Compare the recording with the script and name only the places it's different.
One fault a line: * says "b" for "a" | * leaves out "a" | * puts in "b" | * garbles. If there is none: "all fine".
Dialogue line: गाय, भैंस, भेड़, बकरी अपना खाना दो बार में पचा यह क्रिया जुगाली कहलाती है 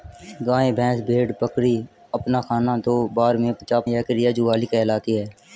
all fine